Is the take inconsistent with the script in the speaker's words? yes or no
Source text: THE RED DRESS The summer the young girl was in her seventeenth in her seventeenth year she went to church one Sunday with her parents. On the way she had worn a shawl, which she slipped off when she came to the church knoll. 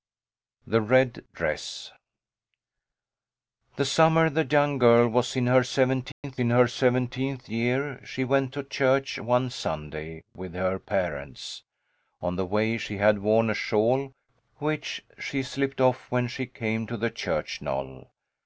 no